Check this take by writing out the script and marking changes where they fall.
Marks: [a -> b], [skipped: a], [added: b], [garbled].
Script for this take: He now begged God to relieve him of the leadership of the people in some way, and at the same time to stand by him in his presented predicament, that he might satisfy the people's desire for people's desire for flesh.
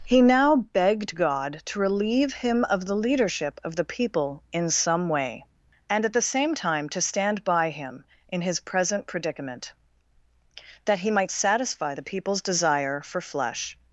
He now begged God to relieve him of the leadership of the people in some way, and at the same time to stand by him in his [presented -> present] predicament, that he might satisfy the people's desire for [skipped: people's desire for] flesh.